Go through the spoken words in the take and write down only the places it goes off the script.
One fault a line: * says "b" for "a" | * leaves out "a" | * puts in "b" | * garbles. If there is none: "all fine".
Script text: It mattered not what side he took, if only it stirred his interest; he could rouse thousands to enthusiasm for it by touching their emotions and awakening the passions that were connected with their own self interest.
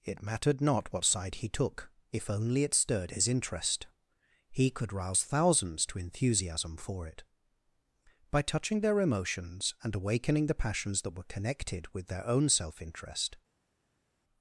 all fine